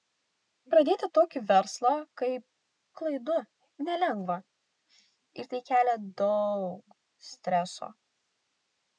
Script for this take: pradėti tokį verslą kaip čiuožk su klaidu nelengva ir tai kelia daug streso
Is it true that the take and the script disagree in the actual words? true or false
true